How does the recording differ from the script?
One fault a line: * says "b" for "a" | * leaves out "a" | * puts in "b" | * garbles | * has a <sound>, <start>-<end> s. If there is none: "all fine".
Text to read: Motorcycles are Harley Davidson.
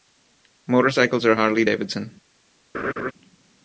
* has a laugh, 2.7-3.1 s